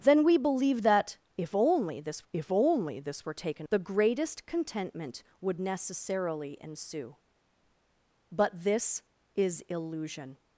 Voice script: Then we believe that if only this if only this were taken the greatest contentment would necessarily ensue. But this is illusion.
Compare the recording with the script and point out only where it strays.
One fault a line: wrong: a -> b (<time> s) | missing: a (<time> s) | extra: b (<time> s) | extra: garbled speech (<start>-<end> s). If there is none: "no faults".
no faults